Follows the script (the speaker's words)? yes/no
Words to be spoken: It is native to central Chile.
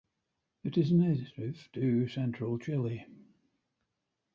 yes